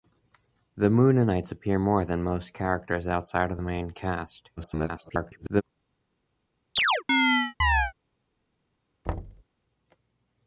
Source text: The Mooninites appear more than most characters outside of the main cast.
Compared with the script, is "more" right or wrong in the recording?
right